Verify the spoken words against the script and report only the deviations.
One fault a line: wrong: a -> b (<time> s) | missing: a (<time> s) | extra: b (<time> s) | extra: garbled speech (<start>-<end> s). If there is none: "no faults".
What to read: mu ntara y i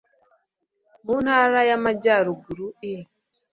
extra: amajyaruguru (1.8 s)